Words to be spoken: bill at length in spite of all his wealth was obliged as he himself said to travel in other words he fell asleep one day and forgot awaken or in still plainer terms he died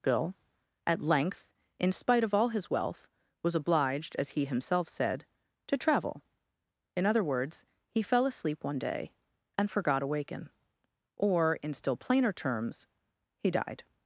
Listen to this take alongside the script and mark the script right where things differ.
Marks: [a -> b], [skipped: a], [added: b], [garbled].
bill at length in spite of all his wealth was obliged as he himself said to travel in other words he fell asleep one day and forgot awaken or in still plainer terms he died